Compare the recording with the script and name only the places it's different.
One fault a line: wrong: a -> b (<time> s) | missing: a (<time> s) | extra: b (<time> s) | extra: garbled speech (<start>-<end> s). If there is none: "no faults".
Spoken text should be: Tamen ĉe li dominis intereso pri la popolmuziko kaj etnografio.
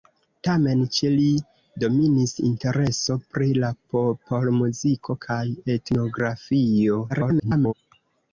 extra: garbled speech (7.1-7.7 s)